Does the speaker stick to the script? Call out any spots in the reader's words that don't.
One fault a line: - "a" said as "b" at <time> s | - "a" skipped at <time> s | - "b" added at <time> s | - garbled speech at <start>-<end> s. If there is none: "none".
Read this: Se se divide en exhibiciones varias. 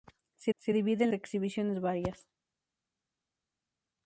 none